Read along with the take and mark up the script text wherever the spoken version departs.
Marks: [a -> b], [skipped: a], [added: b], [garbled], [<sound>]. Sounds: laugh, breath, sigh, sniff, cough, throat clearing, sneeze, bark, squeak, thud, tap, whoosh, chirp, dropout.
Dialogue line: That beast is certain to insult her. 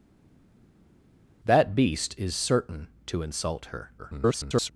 That beast is certain to insult her. [garbled]